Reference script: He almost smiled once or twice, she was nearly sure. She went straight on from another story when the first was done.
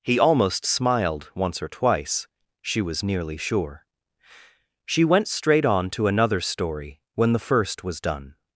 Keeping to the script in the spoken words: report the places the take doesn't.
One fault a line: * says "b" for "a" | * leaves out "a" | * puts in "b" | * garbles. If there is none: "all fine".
* says "to" for "from"